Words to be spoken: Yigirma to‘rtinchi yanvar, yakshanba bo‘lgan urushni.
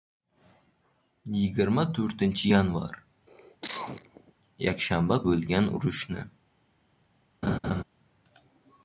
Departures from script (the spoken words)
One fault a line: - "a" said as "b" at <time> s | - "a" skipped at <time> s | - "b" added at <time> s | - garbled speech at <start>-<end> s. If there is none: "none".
none